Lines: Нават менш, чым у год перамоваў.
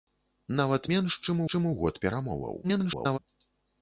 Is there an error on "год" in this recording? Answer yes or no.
no